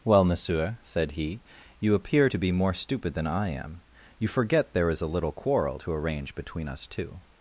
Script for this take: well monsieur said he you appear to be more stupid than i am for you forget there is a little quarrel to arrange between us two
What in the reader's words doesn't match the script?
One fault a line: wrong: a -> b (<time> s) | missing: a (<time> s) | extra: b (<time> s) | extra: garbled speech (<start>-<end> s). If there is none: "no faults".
missing: for (3.8 s)